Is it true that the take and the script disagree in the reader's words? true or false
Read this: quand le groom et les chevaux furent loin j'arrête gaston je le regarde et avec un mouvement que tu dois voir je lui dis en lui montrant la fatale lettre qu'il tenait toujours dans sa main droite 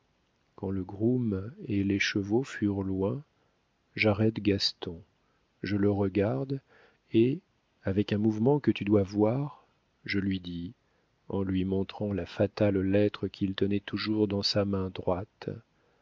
false